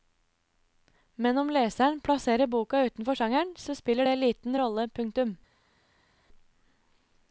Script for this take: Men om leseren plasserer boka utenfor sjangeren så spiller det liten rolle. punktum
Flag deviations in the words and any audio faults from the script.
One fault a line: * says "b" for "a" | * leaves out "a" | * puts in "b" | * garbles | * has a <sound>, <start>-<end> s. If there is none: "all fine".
all fine